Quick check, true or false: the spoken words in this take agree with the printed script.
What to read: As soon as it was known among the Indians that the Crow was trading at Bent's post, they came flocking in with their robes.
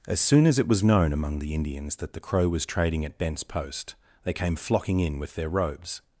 true